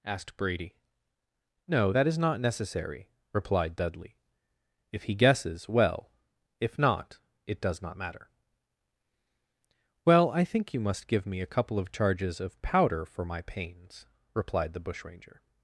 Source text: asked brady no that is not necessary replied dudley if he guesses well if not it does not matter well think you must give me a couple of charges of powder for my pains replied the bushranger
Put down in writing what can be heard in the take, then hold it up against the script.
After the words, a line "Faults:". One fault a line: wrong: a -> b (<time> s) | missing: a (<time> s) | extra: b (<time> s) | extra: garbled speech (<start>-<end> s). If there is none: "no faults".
asked brady no that is not necessary replied dudley if he guesses well if not it does not matter well i think you must give me a couple of charges of powder for my pains replied the bushranger
Faults:
extra: i (10.3 s)